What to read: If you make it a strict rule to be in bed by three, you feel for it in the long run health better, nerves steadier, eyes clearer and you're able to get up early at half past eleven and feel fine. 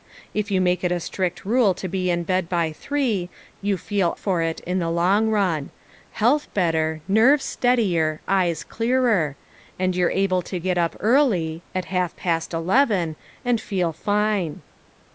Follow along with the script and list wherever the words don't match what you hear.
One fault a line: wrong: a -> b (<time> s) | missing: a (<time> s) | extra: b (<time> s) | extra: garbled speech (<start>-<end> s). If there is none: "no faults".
no faults